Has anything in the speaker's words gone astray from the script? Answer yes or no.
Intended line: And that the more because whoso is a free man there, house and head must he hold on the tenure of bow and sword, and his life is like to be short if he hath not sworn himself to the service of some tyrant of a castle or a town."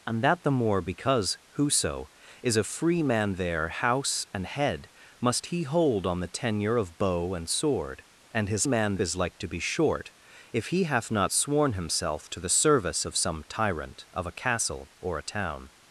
yes